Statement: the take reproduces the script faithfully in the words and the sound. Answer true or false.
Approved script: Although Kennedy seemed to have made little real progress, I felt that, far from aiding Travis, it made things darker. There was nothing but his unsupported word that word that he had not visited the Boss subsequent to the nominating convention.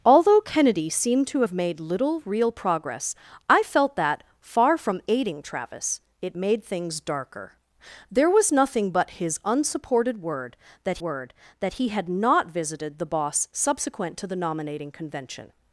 true